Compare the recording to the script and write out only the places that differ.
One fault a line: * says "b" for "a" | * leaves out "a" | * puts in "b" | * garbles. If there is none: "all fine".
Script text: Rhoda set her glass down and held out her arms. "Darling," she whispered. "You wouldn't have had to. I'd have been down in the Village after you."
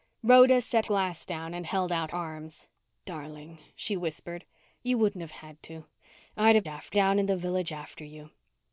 * leaves out "her"
* leaves out "her"
* says "after" for "been"